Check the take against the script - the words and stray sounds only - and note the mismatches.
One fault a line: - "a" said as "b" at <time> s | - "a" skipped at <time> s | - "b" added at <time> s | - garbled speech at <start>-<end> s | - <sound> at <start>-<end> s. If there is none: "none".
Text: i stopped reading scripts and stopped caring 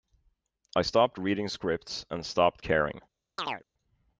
- chirp at 3.4-3.6 s